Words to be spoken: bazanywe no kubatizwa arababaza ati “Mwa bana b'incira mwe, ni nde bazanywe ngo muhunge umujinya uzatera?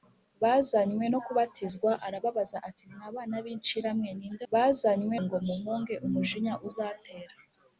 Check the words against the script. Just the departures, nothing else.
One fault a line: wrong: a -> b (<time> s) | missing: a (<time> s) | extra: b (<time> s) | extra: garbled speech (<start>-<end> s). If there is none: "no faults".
no faults